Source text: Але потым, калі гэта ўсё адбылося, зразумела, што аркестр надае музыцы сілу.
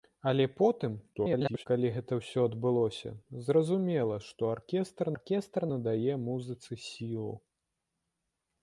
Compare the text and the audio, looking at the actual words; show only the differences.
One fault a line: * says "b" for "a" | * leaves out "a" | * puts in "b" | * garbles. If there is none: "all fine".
* garbles
* puts in "аркестр"